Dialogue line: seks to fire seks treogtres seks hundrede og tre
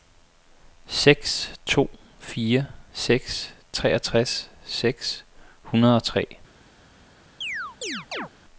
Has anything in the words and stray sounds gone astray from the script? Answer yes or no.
yes